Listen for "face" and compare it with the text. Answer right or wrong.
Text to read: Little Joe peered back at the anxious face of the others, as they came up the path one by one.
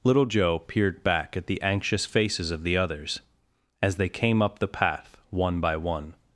wrong